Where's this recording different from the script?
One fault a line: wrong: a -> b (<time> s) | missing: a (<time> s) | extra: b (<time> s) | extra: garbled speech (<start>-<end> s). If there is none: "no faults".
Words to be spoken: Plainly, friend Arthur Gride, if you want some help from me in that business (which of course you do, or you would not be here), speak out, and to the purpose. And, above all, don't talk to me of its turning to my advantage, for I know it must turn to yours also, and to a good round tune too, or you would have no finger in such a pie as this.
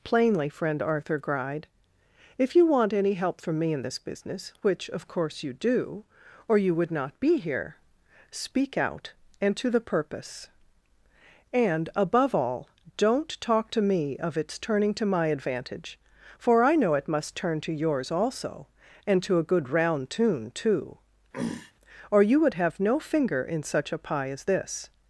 wrong: some -> any (2.9 s)
wrong: that -> this (3.8 s)